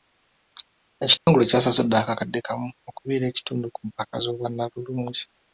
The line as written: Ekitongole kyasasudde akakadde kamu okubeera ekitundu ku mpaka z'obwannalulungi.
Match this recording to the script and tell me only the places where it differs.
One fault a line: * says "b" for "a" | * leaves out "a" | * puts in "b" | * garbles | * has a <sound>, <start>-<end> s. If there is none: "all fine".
* has a dropout, 1.2-1.3 s